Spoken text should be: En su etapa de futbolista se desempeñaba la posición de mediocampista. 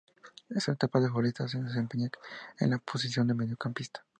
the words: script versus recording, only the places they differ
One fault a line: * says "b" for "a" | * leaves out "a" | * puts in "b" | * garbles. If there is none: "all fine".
* puts in "en"